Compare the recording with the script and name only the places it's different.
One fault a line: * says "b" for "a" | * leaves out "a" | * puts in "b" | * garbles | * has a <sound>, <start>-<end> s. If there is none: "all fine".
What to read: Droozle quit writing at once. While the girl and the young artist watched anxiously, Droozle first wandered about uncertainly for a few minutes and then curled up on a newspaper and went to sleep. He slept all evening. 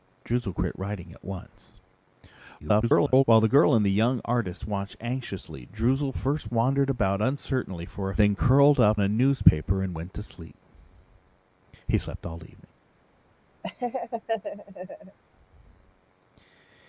* garbles
* leaves out "few minutes and"
* leaves out "on"
* has a laugh, 13.6-15.2 s